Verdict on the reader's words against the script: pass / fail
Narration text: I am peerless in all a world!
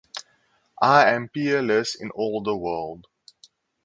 fail